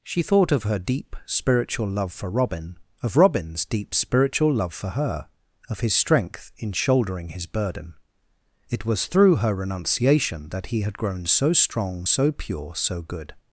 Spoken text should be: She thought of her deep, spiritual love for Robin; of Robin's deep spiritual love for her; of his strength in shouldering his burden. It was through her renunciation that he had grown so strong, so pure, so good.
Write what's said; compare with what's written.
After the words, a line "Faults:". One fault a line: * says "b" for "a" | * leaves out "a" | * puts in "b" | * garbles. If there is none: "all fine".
She thought of her deep, spiritual love for Robin; of Robin's deep spiritual love for her; of his strength in shouldering his burden. It was through her renunciation that he had grown so strong, so pure, so good.
Faults:
all fine